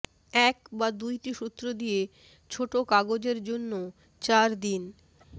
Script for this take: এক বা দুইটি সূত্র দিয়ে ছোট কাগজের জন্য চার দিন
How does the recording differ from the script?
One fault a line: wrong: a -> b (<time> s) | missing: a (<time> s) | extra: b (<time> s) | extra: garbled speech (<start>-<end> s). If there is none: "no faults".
no faults